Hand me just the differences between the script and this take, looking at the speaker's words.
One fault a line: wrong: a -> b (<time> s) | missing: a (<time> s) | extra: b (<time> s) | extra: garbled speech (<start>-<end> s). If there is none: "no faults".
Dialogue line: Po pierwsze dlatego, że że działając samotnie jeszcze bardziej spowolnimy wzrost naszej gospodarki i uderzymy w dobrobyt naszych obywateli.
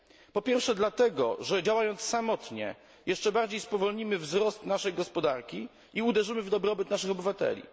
missing: że (1.6 s)